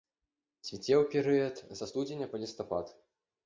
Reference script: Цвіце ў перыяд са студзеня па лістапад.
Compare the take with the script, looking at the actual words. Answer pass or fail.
pass